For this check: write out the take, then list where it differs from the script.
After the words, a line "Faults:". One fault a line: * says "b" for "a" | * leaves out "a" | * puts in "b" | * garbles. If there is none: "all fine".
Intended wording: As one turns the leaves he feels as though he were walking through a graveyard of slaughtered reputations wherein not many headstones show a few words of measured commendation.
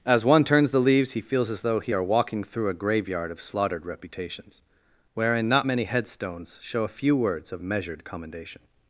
As one turns the leaves he feels as though he are walking through a graveyard of slaughtered reputations wherein not many headstones show a few words of measured commendation.
Faults:
* says "are" for "were"